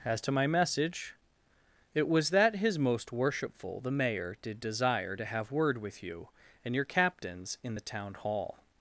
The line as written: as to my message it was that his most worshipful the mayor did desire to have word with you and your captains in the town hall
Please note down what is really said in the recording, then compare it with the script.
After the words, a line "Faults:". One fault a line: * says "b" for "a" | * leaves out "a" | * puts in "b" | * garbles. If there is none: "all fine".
as to my message it was that his most worshipful the mayor did desire to have word with you and your captains in the town hall
Faults:
all fine